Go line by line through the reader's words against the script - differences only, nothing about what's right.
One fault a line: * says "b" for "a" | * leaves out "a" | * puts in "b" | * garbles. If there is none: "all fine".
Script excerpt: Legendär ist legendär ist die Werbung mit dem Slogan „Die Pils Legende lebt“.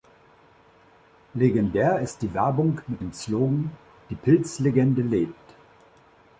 * leaves out "legendär ist"